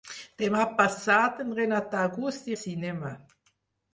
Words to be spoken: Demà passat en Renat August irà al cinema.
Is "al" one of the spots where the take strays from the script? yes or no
yes